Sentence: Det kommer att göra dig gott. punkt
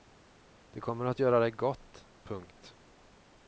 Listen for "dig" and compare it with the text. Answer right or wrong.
right